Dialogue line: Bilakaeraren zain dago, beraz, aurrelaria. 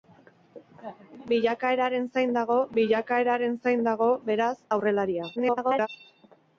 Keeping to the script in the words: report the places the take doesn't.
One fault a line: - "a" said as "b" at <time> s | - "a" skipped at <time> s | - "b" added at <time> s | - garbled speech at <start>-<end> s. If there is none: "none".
- "bilakaeraren zain dago" added at 2.8 s
- garbled speech at 5.4-5.9 s